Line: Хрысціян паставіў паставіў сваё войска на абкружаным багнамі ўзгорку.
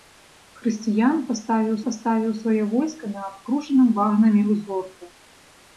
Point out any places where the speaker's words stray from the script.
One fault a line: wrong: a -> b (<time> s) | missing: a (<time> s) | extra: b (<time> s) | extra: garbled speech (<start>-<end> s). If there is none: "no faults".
no faults